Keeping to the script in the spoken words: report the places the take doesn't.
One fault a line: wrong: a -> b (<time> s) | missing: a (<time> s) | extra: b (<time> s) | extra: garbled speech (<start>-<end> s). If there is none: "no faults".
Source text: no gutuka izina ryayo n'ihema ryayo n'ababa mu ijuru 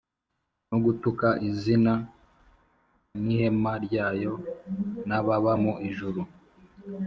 missing: ryayo (1.9 s)